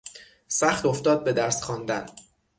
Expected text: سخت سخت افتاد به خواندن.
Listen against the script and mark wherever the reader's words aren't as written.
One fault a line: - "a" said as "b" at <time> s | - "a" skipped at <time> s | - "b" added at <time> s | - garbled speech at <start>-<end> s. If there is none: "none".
- "سخت" skipped at 0.9 s
- "درس" added at 1.3 s